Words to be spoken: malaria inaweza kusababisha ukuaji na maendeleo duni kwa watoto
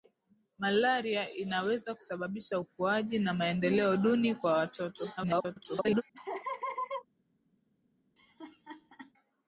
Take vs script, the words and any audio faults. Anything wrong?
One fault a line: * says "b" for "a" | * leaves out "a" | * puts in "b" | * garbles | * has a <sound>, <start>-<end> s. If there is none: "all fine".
* garbles
* has a laugh, 6.1-7.1 s
* has a laugh, 8.2-9.1 s